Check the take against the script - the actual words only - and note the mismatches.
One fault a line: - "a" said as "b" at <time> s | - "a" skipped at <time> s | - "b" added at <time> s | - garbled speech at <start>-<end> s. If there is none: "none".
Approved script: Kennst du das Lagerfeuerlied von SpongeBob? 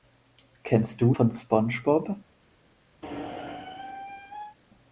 - "das Lagerfeuerlied" skipped at 1.1 s